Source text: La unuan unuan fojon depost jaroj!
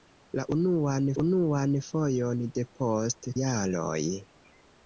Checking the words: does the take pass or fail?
pass